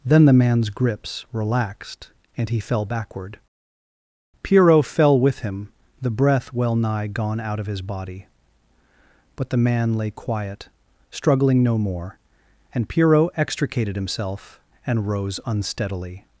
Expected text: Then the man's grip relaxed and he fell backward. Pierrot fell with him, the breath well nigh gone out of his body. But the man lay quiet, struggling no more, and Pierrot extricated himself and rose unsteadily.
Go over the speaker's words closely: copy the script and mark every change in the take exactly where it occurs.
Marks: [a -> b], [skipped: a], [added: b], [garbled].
Then the man's [grip -> grips] relaxed and he fell backward. Pierrot fell with him, the breath well nigh gone out of his body. But the man lay quiet, struggling no more, and Pierrot extricated himself and rose unsteadily.